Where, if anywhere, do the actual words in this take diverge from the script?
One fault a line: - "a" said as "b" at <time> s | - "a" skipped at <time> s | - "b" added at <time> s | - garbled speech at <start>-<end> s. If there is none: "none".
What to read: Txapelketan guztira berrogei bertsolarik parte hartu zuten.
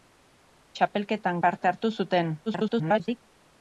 - "guztira berrogei bertsolarik" skipped at 1.4 s
- garbled speech at 2.5-3.2 s